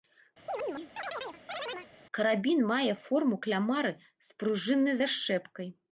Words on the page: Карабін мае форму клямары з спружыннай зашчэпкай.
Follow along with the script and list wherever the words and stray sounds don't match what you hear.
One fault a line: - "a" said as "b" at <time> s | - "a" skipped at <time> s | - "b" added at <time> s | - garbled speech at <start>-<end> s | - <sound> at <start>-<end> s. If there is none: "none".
- chirp at 0.5-1.9 s